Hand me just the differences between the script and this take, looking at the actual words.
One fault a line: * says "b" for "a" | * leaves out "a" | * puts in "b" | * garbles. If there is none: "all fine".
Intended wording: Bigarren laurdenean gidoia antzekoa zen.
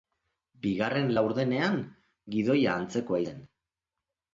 all fine